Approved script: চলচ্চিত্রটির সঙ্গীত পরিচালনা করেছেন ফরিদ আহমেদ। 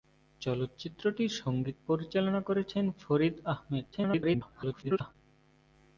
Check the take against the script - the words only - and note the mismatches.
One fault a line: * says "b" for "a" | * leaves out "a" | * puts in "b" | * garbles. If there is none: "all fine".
* garbles